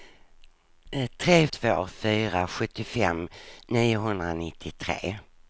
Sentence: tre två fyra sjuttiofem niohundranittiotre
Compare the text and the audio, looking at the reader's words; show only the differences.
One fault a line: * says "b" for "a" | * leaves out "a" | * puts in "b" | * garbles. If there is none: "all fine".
all fine